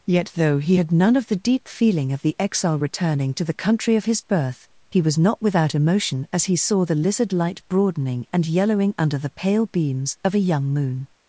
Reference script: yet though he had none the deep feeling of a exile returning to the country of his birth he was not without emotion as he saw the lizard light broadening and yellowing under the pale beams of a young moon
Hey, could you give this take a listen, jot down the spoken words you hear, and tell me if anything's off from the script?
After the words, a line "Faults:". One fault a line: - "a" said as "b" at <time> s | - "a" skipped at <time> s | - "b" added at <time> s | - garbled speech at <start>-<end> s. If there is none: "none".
yet though he had none of the deep feeling of the exile returning to the country of his birth he was not without emotion as he saw the lizard light broadening and yellowing under the pale beams of a young moon
Faults:
- "of" added at 1.2 s
- "a" said as "the" at 2.2 s